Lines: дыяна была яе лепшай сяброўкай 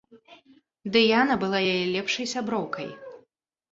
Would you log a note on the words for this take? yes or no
no